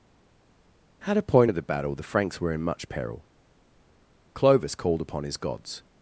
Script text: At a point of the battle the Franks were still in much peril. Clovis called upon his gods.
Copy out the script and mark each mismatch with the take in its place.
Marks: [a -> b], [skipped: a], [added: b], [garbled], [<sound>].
At a point of the battle the Franks were [skipped: still] in much peril. Clovis called upon his gods.